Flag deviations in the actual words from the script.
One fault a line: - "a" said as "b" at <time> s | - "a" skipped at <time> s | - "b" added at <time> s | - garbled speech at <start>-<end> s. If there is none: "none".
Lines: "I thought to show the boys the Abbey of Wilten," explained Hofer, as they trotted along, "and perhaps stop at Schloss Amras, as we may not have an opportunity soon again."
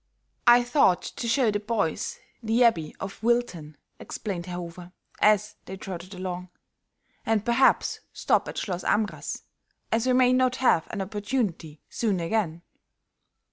- "Herr" added at 4.4 s